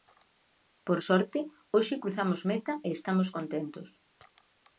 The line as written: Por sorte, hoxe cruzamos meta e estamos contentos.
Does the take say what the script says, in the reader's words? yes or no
yes